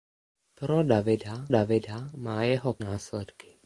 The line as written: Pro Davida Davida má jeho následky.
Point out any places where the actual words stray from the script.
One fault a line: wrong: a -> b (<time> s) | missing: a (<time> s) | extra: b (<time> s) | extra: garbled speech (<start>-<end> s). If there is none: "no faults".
no faults